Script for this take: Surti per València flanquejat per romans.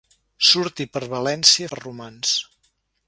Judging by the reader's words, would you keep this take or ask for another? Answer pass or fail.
fail